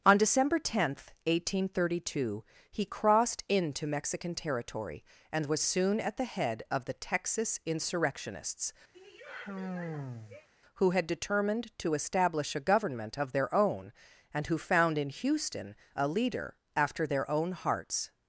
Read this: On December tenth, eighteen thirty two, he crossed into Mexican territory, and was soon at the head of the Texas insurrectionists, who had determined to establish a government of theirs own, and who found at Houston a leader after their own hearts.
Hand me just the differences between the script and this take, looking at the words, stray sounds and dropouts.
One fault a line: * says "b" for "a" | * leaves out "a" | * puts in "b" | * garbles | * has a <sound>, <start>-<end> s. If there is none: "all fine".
* has a sigh, 8.9-10.5 s
* says "their" for "theirs"
* says "in" for "at"